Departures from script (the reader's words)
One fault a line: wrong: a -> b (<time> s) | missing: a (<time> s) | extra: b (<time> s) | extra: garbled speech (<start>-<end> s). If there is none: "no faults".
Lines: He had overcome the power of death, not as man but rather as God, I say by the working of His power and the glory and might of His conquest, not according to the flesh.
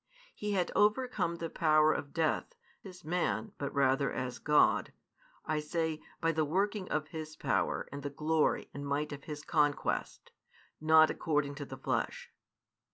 missing: not (2.5 s)